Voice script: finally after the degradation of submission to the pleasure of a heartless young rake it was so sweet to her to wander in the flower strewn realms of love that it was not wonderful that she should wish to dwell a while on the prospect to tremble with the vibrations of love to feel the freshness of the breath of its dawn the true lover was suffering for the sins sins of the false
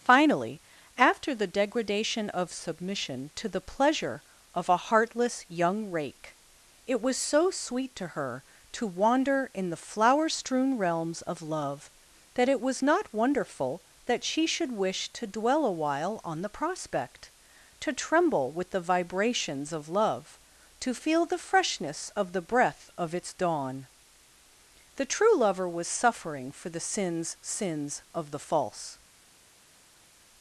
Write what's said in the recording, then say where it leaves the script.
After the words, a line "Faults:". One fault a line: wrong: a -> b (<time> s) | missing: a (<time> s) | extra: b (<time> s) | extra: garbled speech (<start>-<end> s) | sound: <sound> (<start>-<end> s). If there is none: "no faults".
finally after the degradation of submission to the pleasure of a heartless young rake it was so sweet to her to wander in the flower strewn realms of love that it was not wonderful that she should wish to dwell a while on the prospect to tremble with the vibrations of love to feel the freshness of the breath of its dawn the true lover was suffering for the sins sins of the false
Faults:
no faults